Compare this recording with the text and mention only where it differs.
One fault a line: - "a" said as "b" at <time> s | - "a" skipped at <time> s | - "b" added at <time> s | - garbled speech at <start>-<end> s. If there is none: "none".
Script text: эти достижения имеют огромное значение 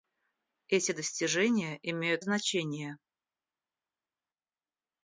- "огромное" skipped at 2.2 s